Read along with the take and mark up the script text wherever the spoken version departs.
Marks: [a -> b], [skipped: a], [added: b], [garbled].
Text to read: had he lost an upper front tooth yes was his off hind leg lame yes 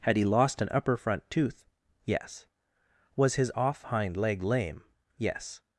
had he lost an upper front tooth yes was his off hind leg lame yes